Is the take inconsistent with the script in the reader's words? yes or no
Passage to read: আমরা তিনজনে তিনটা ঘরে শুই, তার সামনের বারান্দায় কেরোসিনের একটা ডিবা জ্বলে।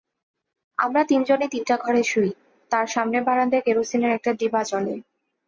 no